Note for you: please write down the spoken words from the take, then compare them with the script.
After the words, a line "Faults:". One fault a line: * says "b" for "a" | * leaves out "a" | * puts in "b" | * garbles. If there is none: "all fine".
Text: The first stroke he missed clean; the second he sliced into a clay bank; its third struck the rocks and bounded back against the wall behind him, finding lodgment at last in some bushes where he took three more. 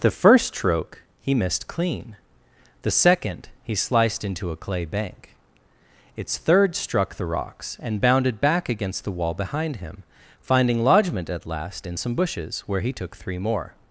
The first stroke he missed clean; the second he sliced into a clay bank; its third struck the rocks and bounded back against the wall behind him, finding lodgment at last in some bushes where he took three more.
Faults:
all fine